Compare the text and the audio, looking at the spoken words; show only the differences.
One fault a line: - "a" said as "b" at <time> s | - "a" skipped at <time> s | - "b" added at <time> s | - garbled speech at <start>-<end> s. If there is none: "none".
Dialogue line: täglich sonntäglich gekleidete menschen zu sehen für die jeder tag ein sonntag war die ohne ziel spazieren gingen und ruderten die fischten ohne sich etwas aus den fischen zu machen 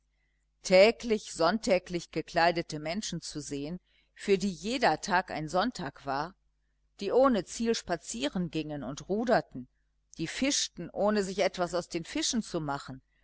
none